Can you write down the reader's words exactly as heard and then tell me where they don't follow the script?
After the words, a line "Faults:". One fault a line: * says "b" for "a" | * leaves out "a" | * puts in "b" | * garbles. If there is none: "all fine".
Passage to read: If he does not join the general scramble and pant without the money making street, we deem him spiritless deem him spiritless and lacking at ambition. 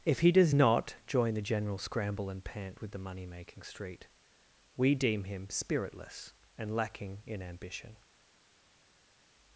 If he does not join the general scramble and pant with the money making street, we deem him spiritless and lacking in ambition.
Faults:
* says "with" for "without"
* leaves out "deem him spiritless"
* says "in" for "at"